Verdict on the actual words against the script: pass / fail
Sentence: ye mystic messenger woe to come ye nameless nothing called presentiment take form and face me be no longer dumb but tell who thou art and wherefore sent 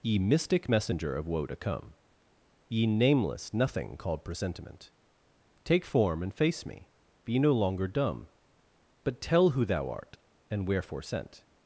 fail